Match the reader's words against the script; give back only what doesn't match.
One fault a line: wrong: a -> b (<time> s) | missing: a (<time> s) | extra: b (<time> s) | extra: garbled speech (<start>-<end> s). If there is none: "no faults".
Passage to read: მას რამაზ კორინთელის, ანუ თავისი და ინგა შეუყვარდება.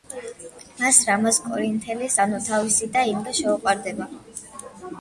no faults